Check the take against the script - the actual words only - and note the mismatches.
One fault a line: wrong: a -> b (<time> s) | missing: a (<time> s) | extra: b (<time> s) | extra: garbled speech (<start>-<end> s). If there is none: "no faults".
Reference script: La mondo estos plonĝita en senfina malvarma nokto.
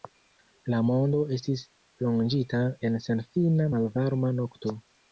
wrong: estos -> estis (1.4 s)